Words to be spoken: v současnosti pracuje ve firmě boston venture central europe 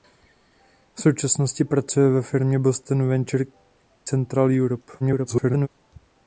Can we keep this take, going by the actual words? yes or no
no